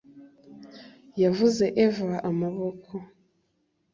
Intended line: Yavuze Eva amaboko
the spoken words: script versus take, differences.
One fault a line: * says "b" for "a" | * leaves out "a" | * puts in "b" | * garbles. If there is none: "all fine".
all fine